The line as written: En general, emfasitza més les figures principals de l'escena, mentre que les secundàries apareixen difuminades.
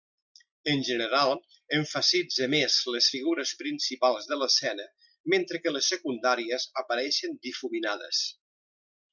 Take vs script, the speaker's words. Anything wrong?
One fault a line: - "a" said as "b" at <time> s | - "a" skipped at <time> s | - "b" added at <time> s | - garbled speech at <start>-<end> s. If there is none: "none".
none